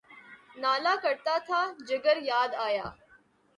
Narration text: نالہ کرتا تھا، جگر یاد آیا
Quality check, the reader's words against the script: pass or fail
pass